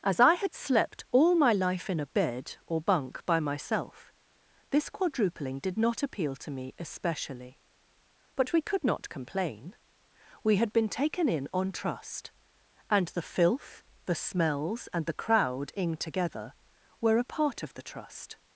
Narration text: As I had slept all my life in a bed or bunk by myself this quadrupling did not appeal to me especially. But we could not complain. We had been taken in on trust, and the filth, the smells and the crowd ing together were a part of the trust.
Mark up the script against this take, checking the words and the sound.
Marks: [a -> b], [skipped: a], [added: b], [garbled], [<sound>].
As I had slept all my life in a bed or bunk by myself this quadrupling did not appeal to me especially. But we could not complain. We had been taken in on trust, and the filth, the smells and the crowd ing together were a part of the trust.